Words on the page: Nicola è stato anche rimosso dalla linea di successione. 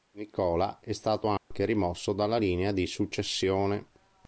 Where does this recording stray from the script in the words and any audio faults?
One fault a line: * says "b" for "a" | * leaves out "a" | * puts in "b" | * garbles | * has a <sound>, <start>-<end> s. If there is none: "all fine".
* has a dropout, 1.4-1.5 s